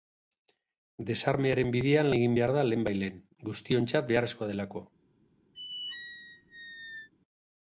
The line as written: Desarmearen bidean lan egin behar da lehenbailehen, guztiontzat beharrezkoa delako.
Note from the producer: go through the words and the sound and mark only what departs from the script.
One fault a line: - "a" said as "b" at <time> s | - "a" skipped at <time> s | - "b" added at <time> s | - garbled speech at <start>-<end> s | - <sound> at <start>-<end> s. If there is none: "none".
- "lan" skipped at 2.1 s
- squeak at 5.5-7.1 s